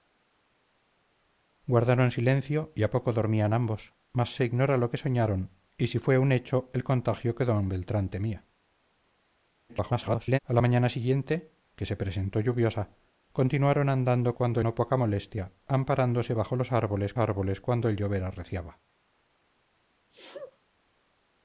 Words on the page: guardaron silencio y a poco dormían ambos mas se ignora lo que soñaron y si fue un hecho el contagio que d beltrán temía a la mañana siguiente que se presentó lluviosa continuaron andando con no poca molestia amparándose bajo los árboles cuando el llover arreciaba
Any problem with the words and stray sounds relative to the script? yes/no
yes